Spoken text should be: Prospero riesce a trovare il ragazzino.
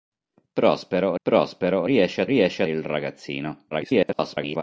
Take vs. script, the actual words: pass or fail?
fail